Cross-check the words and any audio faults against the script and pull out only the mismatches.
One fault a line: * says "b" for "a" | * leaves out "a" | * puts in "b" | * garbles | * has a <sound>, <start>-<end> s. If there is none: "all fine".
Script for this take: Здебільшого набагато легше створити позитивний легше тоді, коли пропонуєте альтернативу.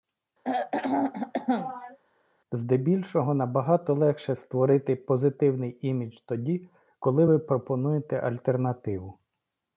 * has a throat clearing, 0.4-2.0 s
* says "імідж" for "легше"
* puts in "ви"